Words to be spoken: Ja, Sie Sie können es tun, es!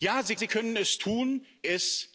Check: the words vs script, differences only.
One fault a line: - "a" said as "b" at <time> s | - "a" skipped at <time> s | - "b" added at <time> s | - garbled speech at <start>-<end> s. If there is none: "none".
none